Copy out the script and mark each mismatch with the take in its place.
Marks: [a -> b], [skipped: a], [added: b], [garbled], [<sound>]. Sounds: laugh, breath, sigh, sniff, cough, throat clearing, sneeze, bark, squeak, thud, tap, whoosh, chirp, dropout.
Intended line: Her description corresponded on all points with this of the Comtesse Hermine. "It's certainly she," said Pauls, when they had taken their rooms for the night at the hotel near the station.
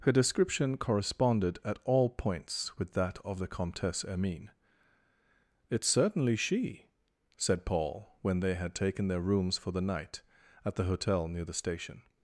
Her description corresponded [on -> at] all points with [this -> that] of the Comtesse Hermine. "It's certainly she," said [Pauls, -> Paul] when they had taken their rooms for the night at the hotel near the station.